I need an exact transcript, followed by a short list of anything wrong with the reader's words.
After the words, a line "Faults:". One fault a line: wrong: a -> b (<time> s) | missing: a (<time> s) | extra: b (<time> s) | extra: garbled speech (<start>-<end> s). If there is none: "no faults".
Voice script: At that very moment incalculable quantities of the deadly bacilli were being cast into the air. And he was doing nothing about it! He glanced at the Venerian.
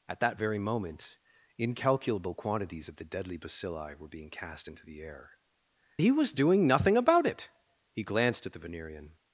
At that very moment incalculable quantities of the deadly bacilli were being cast into the air. He was doing nothing about it! He glanced at the Venerian.
Faults:
missing: And (5.3 s)